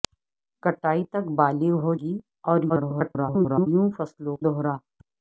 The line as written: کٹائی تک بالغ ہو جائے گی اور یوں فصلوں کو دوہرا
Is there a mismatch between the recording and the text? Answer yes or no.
yes